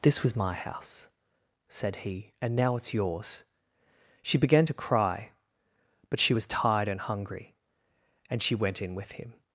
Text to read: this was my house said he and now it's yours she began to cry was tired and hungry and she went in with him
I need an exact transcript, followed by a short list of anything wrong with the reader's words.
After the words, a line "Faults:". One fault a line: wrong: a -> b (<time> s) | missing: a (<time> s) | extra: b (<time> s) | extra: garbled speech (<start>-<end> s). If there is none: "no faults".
this was my house said he and now it's yours she began to cry but she was tired and hungry and she went in with him
Faults:
extra: but she (6.1 s)